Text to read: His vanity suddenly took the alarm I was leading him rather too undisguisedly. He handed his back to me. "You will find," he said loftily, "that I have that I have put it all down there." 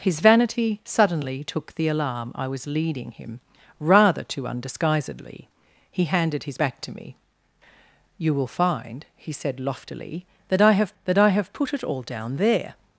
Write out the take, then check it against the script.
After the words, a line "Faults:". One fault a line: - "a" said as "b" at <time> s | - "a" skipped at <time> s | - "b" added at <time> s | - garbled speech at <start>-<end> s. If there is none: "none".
His vanity suddenly took the alarm I was leading him rather too undisguisedly. He handed his back to me. "You will find," he said loftily, "that I have that I have put it all down there."
Faults:
none